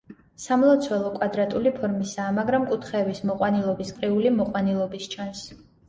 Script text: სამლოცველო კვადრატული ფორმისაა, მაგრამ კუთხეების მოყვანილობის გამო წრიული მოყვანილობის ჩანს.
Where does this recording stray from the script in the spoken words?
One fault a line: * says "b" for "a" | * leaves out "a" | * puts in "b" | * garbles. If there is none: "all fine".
* leaves out "გამო"